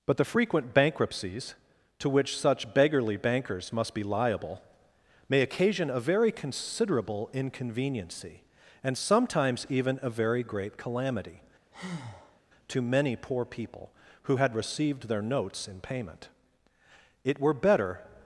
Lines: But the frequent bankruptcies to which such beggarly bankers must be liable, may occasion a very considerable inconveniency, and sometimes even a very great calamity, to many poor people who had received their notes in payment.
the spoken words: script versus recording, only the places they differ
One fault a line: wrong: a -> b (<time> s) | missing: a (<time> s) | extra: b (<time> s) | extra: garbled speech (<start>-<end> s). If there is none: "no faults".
extra: It were better (17.2 s)